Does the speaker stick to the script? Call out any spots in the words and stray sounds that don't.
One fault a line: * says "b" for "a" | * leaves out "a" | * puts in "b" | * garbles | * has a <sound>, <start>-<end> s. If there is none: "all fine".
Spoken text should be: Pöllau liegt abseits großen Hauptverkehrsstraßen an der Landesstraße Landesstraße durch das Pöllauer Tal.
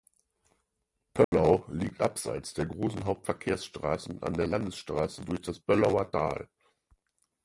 * has a dropout, 1.2-1.3 s
* puts in "der"
* leaves out "Landesstraße"